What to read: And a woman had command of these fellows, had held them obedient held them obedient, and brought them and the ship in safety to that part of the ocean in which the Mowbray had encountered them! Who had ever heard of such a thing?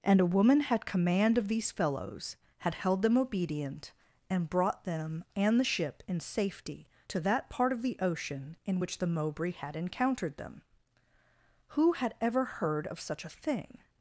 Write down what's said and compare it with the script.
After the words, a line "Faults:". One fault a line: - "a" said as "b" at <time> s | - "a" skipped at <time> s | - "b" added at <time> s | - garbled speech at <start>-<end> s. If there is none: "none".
And a woman had command of these fellows, had held them obedient, and brought them and the ship in safety to that part of the ocean in which the Mowbray had encountered them! Who had ever heard of such a thing?
Faults:
- "held them obedient" skipped at 3.9 s